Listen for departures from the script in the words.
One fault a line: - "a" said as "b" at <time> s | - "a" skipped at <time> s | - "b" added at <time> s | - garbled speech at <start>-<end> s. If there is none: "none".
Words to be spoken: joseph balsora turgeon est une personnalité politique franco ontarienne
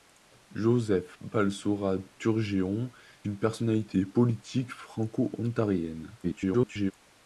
- "est" skipped at 2.9 s
- garbled speech at 6.2-6.9 s